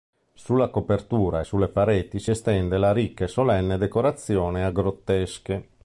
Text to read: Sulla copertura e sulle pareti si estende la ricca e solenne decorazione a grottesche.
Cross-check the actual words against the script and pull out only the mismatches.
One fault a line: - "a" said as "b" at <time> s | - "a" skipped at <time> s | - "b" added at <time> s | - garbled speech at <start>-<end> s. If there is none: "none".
none